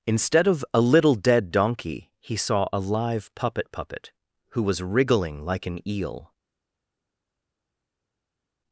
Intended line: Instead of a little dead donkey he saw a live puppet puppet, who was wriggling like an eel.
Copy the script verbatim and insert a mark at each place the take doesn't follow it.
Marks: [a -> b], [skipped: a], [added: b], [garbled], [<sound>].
Instead of a little dead donkey he saw a live puppet puppet, who was wriggling like an eel.